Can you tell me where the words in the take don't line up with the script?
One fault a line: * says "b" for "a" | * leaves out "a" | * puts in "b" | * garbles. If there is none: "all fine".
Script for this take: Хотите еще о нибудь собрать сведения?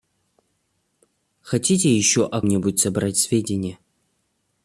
all fine